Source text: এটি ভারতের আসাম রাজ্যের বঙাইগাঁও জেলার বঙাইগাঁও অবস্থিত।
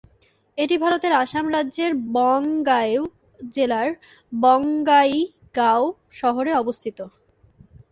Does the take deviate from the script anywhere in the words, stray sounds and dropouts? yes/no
yes